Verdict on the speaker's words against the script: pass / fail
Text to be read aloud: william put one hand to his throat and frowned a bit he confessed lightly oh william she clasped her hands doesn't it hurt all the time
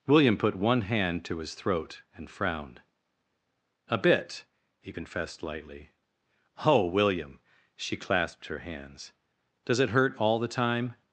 fail